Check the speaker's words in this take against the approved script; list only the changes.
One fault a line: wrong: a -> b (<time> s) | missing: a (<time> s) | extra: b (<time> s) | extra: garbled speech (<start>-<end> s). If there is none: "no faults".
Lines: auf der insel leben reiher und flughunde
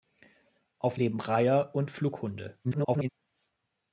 missing: der insel (1.0 s)
extra: garbled speech (2.6-3.1 s)